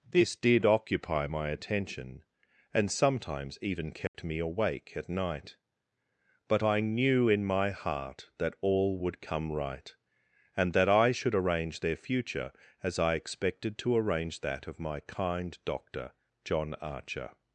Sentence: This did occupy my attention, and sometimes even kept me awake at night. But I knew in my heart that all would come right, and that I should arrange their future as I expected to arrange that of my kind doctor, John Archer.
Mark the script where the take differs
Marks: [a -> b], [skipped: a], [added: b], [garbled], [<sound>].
This did occupy my attention, and sometimes even kept [dropout] me awake at night. But I knew in my heart that all would come right, and that I should arrange their future as I expected to arrange that of my kind doctor, John Archer.